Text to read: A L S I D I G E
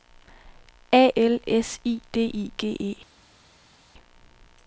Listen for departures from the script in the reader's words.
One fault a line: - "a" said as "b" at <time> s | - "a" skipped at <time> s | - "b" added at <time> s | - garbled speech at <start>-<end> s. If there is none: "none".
none